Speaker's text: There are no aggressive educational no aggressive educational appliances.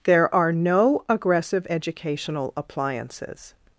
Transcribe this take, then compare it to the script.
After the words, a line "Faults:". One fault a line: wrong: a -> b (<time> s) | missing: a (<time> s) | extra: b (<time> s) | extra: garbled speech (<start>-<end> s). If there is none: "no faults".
There are no aggressive educational appliances.
Faults:
missing: no aggressive educational (2.5 s)